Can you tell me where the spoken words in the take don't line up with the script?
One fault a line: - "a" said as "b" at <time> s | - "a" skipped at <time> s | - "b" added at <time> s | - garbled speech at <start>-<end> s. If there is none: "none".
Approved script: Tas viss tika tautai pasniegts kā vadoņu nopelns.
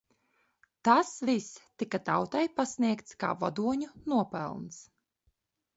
none